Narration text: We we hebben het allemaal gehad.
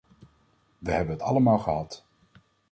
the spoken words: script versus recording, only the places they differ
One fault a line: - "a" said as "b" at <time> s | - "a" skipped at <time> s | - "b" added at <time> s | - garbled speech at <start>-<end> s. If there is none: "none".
- "we" skipped at 0.9 s